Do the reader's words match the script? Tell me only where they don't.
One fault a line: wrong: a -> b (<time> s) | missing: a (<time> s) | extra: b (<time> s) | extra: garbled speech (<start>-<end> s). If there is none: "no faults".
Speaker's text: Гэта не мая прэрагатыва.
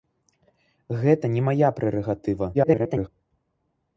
extra: garbled speech (2.5-3.1 s)